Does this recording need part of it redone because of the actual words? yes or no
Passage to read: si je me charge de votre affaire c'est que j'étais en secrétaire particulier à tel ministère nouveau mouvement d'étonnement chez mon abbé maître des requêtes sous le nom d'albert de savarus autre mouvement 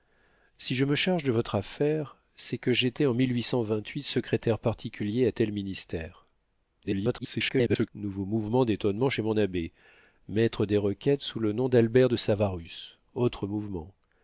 yes